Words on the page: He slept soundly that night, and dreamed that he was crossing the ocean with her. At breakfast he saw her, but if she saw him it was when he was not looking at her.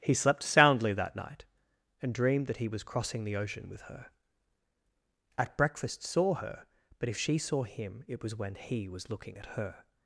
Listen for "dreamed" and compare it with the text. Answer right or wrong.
right